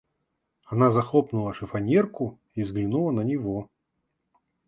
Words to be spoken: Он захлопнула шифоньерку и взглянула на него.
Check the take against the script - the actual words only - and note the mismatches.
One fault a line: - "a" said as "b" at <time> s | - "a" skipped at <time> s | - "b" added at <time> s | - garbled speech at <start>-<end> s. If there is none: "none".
- "Он" said as "Она" at 0.6 s